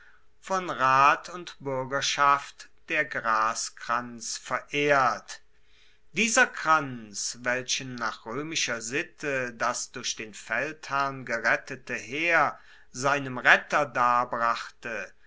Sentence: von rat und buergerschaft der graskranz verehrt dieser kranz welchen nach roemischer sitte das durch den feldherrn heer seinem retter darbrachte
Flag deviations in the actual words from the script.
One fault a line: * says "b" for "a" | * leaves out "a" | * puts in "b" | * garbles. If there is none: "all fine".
* puts in "gerettete"